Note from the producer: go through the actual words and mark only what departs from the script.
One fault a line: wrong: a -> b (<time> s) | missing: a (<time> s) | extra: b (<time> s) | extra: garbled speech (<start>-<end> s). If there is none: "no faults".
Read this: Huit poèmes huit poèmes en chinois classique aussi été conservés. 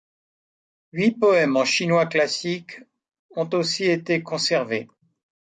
missing: huit poèmes (1.6 s)
extra: ont (3.4 s)